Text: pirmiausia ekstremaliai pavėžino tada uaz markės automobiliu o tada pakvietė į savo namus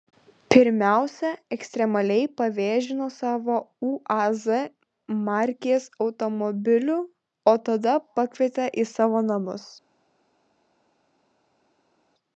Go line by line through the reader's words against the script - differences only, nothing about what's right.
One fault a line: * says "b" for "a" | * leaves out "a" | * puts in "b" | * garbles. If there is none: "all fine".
* says "savo" for "tada"